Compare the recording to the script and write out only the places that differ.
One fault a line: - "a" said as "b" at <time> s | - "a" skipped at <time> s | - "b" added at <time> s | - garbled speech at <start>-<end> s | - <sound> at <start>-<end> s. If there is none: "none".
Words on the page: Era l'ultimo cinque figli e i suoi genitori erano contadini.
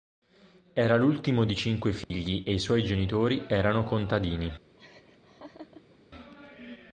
- "di" added at 1.4 s
- dropout at 2.0-2.1 s
- laugh at 4.8-6.0 s